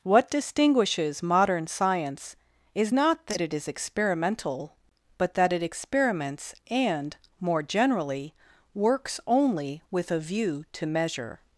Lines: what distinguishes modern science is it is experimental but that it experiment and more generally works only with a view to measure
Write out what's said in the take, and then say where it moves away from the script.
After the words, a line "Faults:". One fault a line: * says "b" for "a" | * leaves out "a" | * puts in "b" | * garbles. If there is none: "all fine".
what distinguishes modern science is not that it is experimental but that it experiments and more generally works only with a view to measure
Faults:
* puts in "not that"
* says "experiments" for "experiment"